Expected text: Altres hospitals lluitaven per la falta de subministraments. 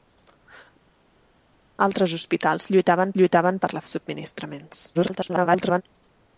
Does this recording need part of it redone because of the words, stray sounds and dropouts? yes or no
yes